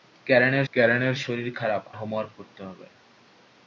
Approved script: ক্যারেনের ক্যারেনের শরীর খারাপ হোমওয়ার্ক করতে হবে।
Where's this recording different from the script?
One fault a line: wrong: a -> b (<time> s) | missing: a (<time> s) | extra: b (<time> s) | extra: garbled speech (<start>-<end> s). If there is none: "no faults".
no faults